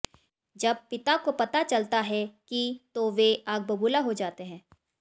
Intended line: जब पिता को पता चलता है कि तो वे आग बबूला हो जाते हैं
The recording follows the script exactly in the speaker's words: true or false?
true